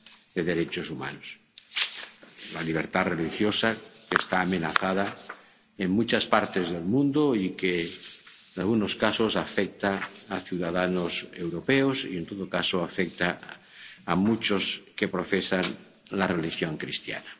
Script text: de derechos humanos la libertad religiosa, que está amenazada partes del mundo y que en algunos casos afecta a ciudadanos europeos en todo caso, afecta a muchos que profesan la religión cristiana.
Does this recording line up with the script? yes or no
no